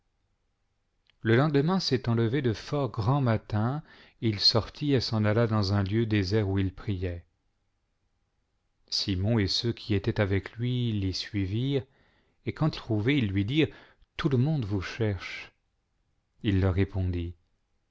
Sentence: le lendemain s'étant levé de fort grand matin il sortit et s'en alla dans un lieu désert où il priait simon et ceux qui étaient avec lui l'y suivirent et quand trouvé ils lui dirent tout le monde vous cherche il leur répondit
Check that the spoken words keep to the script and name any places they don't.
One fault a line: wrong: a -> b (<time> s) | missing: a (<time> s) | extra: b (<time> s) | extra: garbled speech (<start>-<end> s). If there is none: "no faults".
no faults